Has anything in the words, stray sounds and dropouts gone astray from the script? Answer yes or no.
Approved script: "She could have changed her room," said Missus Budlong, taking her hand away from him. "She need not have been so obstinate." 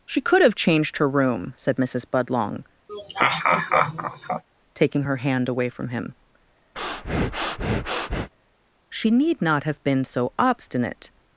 yes